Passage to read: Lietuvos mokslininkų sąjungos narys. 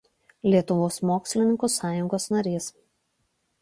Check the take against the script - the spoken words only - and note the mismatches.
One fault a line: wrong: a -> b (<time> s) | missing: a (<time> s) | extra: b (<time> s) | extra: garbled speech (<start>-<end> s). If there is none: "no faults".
no faults